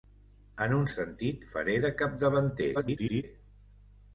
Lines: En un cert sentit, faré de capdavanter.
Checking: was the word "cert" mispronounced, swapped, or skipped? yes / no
yes